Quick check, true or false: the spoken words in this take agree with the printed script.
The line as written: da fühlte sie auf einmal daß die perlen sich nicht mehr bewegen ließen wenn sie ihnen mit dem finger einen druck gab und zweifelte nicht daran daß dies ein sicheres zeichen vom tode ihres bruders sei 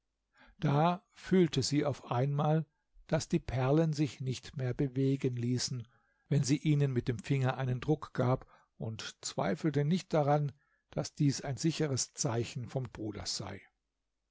false